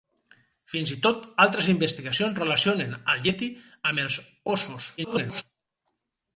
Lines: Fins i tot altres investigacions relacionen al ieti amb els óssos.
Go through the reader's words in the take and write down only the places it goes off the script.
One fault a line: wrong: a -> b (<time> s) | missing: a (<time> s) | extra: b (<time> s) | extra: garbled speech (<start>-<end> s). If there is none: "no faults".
extra: garbled speech (5.0-5.4 s)